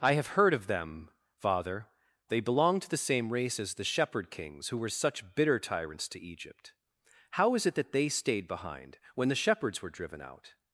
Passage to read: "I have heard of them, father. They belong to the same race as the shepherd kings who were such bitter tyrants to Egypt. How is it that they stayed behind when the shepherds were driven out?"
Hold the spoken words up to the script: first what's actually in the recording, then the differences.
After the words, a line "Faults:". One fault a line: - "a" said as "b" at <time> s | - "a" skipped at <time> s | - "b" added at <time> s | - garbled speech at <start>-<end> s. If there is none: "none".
"I have heard of them, father. They belong to the same race as the shepherd kings who were such bitter tyrants to Egypt. How is it that they stayed behind when the shepherds were driven out?"
Faults:
none